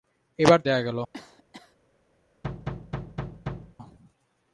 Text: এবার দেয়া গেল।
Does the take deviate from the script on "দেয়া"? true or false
false